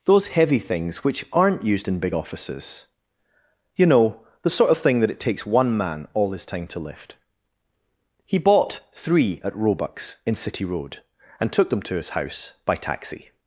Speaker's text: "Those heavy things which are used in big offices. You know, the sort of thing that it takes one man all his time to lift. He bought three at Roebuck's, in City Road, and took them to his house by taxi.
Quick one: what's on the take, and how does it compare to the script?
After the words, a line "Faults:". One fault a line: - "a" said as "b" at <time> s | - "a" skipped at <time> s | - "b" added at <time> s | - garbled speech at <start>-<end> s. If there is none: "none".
"Those heavy things which aren't used in big offices. You know, the sort of thing that it takes one man all his time to lift. He bought three at Roebuck's, in City Road, and took them to his house by taxi.
Faults:
- "are" said as "aren't" at 1.3 s